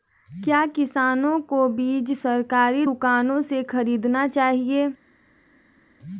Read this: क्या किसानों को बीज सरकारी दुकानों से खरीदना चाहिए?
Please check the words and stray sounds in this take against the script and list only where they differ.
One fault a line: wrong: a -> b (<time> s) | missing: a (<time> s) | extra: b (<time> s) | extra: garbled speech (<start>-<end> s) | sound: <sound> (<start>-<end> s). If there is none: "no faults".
no faults